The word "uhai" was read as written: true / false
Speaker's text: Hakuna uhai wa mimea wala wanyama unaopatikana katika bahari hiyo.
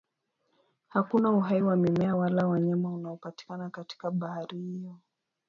true